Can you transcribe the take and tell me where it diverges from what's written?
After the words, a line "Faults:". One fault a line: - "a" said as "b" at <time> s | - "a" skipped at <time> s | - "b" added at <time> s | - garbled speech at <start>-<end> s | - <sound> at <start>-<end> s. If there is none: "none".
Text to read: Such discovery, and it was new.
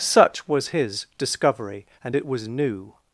Such was his discovery, and it was new.
Faults:
- "was his" added at 0.5 s